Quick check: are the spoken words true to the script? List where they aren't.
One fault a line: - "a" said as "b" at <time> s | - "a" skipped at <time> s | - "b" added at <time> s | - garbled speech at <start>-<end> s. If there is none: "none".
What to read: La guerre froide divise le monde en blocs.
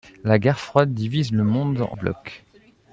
none